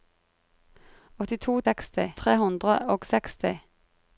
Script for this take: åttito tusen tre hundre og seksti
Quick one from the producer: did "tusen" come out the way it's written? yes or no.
no